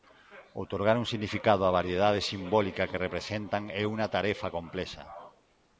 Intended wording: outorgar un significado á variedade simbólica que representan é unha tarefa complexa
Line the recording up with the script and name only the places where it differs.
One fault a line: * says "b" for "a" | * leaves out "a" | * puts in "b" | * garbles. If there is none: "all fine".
all fine